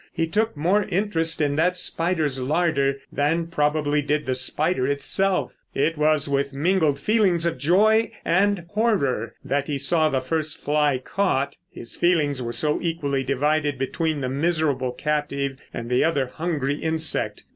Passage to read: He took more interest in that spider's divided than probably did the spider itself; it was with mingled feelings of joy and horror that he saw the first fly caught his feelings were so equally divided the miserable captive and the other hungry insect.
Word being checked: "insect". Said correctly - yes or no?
yes